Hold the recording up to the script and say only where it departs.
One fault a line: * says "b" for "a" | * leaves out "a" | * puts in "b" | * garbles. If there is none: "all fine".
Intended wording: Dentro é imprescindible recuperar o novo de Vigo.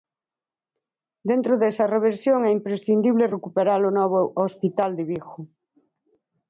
* puts in "desa reversión"
* puts in "hospital"